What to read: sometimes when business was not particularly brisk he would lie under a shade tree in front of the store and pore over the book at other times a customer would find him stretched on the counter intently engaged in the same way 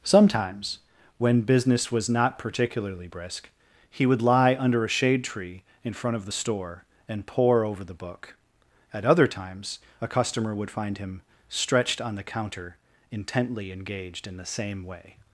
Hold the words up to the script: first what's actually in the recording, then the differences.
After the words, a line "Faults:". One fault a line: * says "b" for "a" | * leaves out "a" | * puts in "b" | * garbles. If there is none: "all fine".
sometimes when business was not particularly brisk he would lie under a shade tree in front of the store and pore over the book at other times a customer would find him stretched on the counter intently engaged in the same way
Faults:
all fine